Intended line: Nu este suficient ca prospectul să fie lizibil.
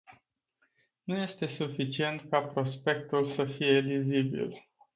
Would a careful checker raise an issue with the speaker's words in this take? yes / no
no